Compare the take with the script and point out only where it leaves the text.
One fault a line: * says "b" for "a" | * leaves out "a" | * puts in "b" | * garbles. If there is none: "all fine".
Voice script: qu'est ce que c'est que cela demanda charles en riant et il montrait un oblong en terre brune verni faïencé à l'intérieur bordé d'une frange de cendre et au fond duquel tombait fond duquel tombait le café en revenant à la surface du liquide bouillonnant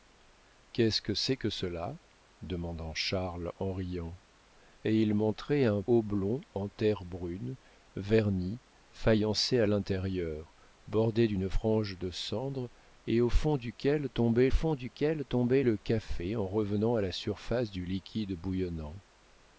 all fine